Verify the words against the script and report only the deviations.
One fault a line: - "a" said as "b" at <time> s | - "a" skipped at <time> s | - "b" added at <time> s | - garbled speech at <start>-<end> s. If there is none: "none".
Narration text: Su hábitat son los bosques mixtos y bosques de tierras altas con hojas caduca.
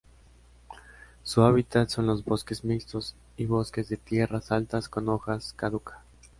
none